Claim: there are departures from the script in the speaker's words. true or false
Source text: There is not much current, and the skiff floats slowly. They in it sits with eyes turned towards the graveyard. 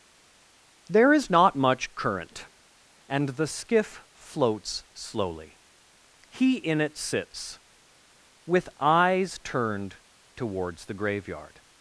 true